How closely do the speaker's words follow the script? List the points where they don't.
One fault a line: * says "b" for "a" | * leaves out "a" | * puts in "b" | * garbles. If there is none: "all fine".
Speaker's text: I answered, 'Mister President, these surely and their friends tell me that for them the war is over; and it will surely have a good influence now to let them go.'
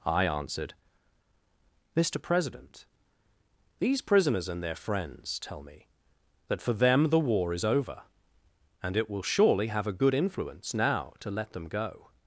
* says "prisoners" for "surely"